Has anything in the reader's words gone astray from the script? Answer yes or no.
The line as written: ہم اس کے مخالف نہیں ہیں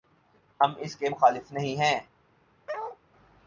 no